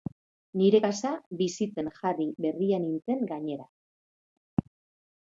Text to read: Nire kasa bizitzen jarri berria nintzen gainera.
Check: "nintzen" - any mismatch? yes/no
no